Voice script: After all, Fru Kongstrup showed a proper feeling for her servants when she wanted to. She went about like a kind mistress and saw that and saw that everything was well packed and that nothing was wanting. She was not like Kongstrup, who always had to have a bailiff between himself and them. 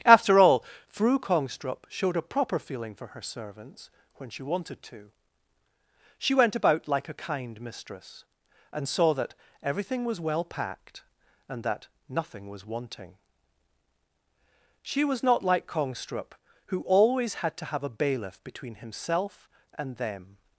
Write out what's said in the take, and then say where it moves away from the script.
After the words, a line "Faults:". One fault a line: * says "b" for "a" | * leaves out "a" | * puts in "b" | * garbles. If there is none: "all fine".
After all, Fru Kongstrup showed a proper feeling for her servants when she wanted to. She went about like a kind mistress and saw that everything was well packed and that nothing was wanting. She was not like Kongstrup, who always had to have a bailiff between himself and them.
Faults:
* leaves out "and saw that"